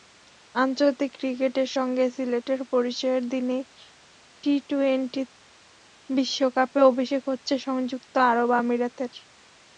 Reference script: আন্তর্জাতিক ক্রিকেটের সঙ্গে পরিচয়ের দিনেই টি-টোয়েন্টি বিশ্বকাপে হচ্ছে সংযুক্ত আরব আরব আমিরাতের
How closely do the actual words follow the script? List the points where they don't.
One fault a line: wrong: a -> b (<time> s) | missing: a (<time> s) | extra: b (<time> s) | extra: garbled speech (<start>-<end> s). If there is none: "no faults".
extra: সিলেটের (2.1 s)
extra: অভিষেক (6.9 s)
missing: আরব (8.5 s)